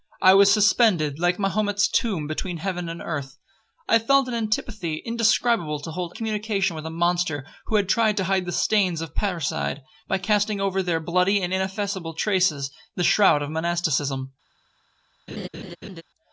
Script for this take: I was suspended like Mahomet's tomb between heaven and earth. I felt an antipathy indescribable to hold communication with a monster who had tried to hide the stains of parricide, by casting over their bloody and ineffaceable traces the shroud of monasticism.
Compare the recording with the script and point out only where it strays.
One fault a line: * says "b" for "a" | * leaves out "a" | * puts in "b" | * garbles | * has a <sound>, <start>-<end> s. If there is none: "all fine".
* has a laugh, 15.3-16.0 s